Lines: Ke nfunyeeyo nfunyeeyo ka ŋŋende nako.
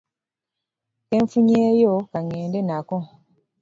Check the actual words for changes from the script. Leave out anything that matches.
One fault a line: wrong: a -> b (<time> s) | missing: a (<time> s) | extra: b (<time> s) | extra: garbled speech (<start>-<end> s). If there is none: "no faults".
missing: nfunyeeyo (1.9 s)